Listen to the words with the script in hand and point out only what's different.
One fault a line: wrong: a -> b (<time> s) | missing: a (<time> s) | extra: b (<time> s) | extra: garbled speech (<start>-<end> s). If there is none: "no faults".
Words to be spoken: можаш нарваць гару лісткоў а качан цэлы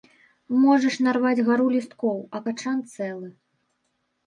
no faults